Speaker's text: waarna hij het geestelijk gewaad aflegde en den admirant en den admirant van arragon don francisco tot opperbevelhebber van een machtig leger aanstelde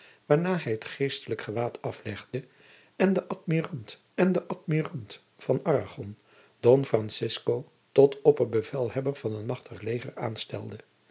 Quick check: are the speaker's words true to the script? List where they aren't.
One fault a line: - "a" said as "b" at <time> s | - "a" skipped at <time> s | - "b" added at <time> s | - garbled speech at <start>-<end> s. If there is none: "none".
none